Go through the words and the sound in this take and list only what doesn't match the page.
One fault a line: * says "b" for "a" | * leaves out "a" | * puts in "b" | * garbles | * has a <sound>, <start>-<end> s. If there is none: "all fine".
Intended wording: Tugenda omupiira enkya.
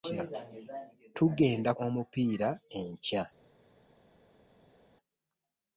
all fine